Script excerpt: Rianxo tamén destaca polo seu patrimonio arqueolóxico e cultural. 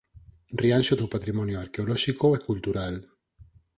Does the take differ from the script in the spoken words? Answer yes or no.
yes